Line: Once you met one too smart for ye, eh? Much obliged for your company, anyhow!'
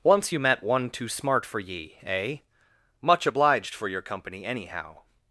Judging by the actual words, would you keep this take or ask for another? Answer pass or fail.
pass